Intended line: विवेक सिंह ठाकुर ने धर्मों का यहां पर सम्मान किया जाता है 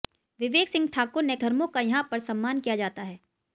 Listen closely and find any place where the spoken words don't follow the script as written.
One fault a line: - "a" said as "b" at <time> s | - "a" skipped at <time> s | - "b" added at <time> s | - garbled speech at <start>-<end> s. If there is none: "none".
none